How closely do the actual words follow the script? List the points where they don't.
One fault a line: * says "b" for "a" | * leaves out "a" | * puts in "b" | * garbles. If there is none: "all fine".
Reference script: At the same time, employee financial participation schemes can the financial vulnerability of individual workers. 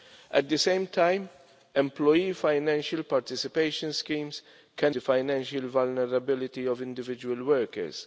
all fine